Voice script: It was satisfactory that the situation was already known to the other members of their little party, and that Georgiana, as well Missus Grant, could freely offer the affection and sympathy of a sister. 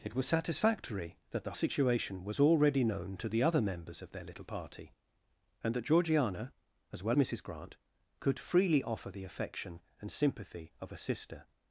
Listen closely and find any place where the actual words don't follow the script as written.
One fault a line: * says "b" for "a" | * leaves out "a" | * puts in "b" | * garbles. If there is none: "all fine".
all fine